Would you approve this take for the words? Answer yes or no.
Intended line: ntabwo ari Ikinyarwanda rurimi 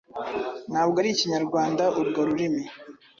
no